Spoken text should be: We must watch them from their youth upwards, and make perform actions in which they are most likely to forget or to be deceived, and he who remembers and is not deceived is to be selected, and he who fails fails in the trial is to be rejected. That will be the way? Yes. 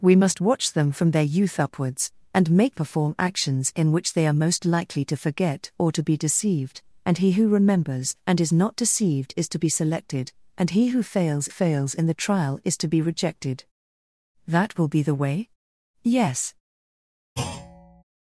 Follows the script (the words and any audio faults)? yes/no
no